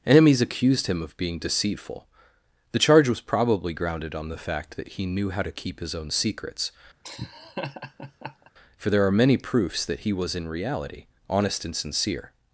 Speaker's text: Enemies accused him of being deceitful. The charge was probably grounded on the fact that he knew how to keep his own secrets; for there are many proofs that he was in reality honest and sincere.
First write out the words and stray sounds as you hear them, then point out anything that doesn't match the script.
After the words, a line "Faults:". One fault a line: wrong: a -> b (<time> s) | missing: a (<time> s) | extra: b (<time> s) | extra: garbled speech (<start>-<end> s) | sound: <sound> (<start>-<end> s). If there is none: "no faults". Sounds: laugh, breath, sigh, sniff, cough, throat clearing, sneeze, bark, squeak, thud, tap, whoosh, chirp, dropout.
Enemies accused him of being deceitful. The charge was probably grounded on the fact that he knew how to keep his own secrets; for there are many proofs that he was in reality honest and sincere.
Faults:
sound: laugh (7.0-8.5 s)